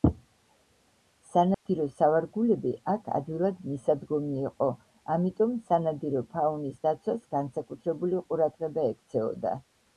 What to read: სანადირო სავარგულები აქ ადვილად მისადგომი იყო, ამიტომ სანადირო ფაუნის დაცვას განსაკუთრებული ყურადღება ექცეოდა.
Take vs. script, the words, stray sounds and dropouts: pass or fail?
fail